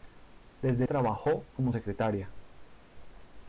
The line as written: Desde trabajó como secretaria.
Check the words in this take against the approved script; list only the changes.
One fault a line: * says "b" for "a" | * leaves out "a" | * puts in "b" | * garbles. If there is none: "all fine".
all fine